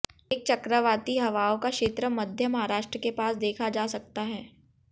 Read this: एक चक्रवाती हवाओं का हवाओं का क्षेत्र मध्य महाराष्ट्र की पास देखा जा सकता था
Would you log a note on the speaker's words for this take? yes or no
yes